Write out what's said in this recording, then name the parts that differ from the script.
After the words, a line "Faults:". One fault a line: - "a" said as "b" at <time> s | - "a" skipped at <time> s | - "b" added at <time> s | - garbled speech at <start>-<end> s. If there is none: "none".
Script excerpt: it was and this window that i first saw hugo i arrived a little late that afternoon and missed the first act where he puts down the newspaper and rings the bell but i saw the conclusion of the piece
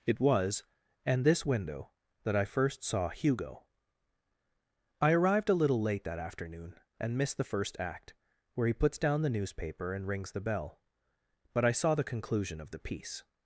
it was and this window that i first saw hugo i arrived a little late that afternoon and missed the first act where he puts down the newspaper and rings the bell but i saw the conclusion of the piece
Faults:
none